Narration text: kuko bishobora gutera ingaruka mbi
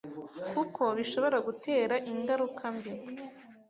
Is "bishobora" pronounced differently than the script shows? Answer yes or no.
no